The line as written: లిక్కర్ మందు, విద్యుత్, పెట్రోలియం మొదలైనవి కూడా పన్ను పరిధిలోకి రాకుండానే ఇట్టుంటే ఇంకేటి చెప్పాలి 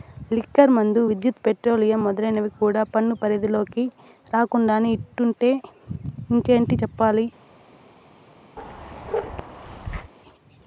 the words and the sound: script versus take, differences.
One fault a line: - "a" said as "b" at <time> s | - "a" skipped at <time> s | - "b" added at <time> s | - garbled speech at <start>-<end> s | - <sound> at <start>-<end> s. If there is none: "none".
- bark at 8.6-10.1 s